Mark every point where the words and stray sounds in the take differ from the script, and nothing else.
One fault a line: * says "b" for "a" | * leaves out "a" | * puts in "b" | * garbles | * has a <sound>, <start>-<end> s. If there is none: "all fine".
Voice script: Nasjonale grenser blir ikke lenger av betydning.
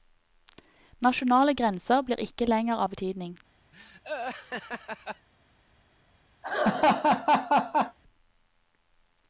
* has a laugh, 3.7-5.3 s
* has a laugh, 6.4-8.0 s